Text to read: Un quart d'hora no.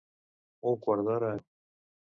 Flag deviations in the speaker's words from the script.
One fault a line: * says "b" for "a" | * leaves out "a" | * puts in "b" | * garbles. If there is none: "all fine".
all fine